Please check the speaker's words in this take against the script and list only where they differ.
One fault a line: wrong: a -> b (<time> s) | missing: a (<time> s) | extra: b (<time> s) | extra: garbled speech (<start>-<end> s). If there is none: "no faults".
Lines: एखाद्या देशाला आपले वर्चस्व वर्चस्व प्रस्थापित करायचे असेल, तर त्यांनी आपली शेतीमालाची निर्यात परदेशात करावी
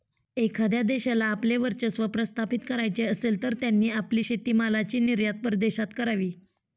missing: वर्चस्व (2.0 s)